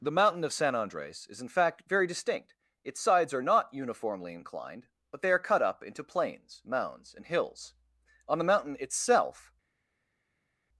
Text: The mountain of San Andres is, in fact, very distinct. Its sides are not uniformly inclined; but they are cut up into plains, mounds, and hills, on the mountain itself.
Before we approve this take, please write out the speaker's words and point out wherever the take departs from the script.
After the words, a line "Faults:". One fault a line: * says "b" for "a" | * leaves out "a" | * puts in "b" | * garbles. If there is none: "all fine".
The mountain of San Andres is, in fact, very distinct. Its sides are not uniformly inclined; but they are cut up into plains, mounds, and hills, on the mountain itself.
Faults:
all fine